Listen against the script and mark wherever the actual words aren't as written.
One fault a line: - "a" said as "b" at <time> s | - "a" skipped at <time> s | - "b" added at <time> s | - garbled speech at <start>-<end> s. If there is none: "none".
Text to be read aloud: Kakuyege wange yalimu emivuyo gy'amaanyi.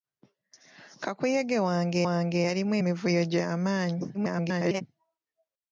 - "wange" added at 2.1 s
- garbled speech at 4.1-4.8 s